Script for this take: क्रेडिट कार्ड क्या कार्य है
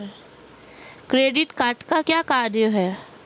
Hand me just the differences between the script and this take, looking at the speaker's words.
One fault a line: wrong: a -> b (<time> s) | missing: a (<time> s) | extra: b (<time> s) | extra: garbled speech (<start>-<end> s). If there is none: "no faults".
extra: का (1.8 s)